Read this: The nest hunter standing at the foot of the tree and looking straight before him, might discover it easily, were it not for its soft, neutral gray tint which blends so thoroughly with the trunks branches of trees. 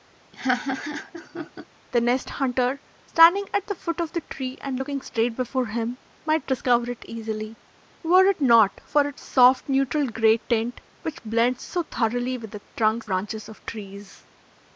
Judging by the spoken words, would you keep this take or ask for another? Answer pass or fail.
pass